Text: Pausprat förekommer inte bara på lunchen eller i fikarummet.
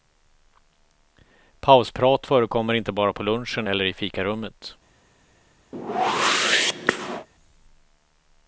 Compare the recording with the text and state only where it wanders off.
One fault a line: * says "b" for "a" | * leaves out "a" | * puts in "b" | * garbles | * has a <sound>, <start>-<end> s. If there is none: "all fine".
* has a whoosh, 5.7-7.3 s